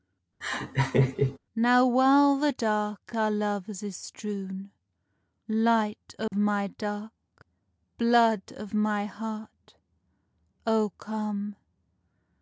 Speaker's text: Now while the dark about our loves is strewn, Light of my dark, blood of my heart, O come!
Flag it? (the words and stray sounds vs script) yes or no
yes